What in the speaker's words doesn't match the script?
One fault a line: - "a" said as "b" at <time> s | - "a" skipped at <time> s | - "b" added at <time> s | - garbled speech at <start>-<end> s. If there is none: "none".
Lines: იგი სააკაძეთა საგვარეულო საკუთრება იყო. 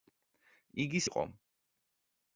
- "სააკაძეთა საგვარეულო საკუთრება" skipped at 1.0 s